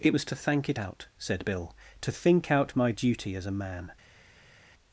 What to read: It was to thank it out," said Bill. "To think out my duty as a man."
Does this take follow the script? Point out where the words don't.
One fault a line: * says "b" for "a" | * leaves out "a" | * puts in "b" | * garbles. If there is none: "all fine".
all fine